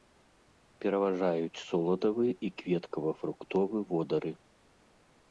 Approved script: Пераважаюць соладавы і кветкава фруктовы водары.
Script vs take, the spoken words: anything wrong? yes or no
no